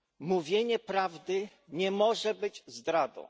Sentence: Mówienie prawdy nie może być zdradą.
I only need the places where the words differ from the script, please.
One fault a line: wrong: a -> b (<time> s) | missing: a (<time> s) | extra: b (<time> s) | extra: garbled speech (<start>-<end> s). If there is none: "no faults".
no faults